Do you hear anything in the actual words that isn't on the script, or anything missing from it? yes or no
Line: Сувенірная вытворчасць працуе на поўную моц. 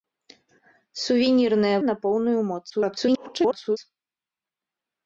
yes